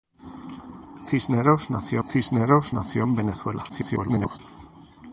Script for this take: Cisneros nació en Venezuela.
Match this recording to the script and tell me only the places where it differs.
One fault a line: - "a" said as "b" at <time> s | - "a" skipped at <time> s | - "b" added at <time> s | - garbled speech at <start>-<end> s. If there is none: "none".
- "cisneros nació" added at 2.0 s
- garbled speech at 3.7-4.4 s